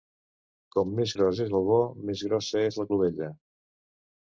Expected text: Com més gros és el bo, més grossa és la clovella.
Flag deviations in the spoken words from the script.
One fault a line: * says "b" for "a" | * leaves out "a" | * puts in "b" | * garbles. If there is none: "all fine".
all fine